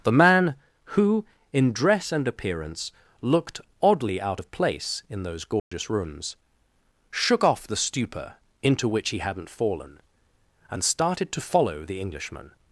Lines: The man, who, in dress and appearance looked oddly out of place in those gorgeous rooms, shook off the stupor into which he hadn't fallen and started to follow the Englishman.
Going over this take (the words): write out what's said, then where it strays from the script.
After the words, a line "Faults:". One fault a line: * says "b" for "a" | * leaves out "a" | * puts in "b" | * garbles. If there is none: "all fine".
The man, who, in dress and appearance looked oddly out of place in those gorgeous rooms, shook off the stupor into which he hadn't fallen and started to follow the Englishman.
Faults:
all fine